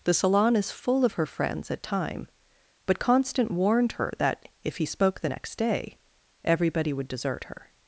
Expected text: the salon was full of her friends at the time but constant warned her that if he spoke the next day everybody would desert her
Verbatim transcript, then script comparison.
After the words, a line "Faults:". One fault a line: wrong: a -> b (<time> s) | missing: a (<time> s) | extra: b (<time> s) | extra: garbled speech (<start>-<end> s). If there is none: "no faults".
the salon is full of her friends at time but constant warned her that if he spoke the next day everybody would desert her
Faults:
wrong: was -> is (0.6 s)
missing: the (1.8 s)